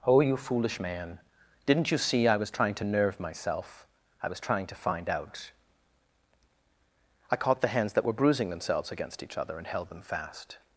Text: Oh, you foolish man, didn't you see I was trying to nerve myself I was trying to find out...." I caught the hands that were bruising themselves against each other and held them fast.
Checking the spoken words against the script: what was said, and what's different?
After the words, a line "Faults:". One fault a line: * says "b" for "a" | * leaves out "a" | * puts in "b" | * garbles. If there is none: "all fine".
Oh, you foolish man, didn't you see I was trying to nerve myself I was trying to find out...." I caught the hands that were bruising themselves against each other and held them fast.
Faults:
all fine